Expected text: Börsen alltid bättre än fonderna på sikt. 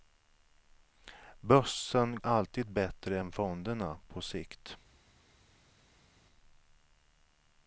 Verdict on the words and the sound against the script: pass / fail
pass